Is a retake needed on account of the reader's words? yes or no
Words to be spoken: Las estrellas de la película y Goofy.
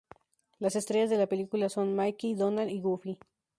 yes